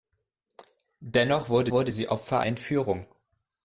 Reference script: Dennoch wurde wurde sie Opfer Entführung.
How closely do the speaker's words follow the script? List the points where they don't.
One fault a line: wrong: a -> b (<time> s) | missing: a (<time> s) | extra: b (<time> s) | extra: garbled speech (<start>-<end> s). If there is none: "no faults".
no faults